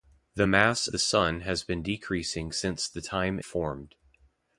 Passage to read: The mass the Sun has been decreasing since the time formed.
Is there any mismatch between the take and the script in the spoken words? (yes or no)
no